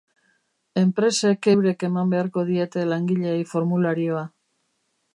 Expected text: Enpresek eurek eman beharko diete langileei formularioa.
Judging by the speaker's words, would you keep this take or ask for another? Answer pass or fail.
pass